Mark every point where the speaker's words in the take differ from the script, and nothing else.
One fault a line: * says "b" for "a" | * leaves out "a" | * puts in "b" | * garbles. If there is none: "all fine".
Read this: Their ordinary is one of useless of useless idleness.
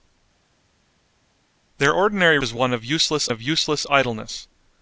all fine